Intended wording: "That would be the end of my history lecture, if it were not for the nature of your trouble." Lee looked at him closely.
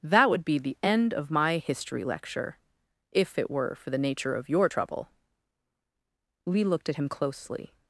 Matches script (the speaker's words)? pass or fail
fail